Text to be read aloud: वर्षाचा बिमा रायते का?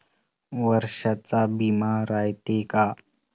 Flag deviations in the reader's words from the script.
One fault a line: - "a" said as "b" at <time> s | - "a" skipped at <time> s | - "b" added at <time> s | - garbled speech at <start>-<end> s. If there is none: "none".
none